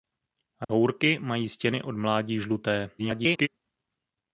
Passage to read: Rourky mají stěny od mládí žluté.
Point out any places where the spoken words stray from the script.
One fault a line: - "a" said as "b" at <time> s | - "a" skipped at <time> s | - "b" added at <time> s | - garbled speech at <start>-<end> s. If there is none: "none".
- garbled speech at 3.0-3.5 s